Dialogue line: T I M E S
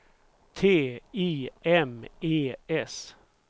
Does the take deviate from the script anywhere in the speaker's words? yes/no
no